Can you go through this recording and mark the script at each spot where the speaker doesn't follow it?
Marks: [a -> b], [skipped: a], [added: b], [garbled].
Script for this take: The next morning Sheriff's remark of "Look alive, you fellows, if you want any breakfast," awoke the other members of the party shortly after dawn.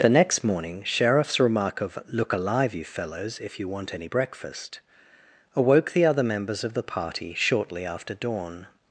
The next morning Sheriff's remark of "Look alive, you fellows, if you want any breakfast," awoke the other members of the party shortly after dawn.